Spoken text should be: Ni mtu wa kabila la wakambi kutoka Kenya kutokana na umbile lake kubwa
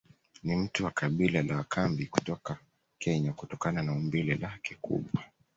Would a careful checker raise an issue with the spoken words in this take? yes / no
no